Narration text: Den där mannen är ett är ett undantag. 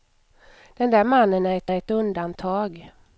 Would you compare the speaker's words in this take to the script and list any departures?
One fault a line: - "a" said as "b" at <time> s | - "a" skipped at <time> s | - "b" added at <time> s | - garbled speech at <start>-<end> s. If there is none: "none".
none